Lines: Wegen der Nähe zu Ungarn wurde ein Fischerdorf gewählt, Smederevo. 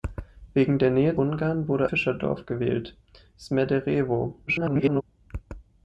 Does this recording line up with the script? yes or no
no